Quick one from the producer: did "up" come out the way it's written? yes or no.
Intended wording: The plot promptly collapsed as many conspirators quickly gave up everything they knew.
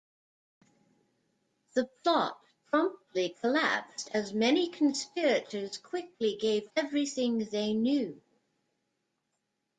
no